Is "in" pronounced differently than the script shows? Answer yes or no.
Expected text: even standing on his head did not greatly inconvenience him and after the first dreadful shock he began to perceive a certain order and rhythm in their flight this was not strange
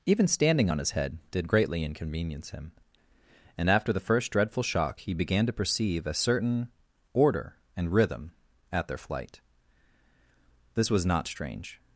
yes